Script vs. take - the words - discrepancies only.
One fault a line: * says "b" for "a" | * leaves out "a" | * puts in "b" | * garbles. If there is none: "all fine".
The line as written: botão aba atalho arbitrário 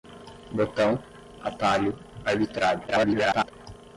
* leaves out "aba"
* garbles